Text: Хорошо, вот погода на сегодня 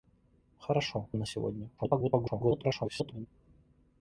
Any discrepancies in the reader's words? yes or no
yes